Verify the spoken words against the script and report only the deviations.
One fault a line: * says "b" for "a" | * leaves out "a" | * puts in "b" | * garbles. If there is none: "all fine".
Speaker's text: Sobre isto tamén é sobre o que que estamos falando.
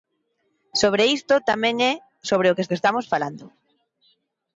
all fine